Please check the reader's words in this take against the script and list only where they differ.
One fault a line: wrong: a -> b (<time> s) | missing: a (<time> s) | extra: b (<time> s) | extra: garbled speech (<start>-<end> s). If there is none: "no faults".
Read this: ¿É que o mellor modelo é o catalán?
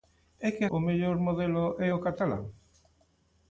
no faults